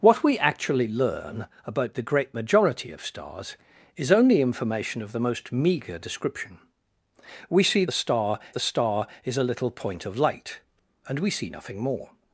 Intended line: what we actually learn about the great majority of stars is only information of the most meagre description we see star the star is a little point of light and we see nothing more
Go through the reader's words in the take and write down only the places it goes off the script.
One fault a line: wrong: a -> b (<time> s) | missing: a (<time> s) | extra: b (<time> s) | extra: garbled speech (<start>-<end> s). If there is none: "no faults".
no faults